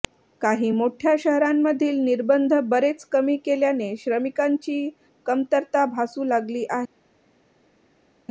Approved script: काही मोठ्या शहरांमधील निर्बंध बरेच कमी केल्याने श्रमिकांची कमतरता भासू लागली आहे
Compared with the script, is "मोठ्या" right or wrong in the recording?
right